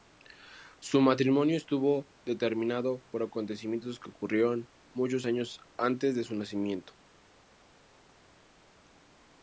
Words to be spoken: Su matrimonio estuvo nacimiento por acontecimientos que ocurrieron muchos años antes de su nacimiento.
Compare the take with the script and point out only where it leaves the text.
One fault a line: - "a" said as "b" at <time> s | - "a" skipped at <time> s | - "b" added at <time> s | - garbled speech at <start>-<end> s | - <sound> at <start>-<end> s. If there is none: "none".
- "nacimiento" said as "determinado" at 2.2 s